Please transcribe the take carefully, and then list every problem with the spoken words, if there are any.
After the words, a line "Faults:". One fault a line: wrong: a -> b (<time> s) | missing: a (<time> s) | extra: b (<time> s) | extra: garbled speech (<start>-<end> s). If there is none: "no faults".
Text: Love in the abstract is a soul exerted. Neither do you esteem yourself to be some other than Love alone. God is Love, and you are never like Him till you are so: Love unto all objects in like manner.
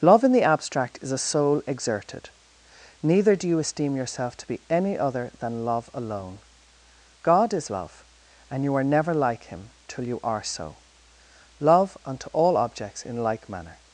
Love in the abstract is a soul exerted. Neither do you esteem yourself to be any other than Love alone. God is Love, and you are never like Him till you are so: Love unto all objects in like manner.
Faults:
wrong: some -> any (4.7 s)